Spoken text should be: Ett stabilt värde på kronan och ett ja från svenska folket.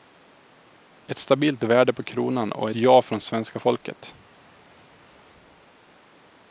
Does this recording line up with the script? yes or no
no